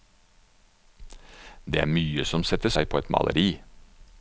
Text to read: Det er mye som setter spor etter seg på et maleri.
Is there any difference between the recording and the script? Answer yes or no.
yes